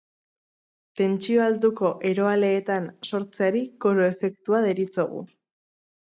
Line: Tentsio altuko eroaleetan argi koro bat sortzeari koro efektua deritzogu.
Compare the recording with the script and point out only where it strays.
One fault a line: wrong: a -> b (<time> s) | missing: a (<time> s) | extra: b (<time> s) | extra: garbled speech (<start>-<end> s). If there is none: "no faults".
missing: argi koro bat (2.9 s)